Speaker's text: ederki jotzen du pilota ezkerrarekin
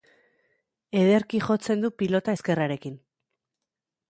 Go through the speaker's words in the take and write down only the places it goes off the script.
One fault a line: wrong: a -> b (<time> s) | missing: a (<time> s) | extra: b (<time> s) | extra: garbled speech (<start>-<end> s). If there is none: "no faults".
no faults